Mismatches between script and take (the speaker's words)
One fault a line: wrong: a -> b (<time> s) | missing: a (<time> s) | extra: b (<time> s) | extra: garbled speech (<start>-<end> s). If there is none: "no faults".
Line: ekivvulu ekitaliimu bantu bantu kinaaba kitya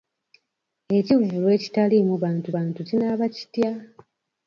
no faults